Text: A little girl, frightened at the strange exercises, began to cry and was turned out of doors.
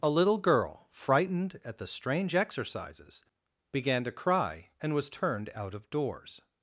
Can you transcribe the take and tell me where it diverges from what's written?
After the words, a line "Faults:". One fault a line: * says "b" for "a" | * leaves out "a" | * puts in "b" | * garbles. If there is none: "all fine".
A little girl, frightened at the strange exercises, began to cry and was turned out of doors.
Faults:
all fine